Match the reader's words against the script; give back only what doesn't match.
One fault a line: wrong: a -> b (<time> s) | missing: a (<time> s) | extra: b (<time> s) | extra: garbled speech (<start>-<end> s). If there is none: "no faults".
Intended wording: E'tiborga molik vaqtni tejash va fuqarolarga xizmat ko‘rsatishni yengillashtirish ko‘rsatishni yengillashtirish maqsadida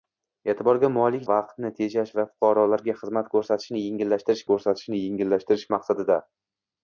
no faults